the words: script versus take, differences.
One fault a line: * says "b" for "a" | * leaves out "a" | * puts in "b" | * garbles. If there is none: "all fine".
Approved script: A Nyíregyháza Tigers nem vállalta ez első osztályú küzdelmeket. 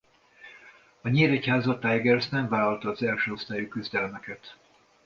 * says "az" for "ez"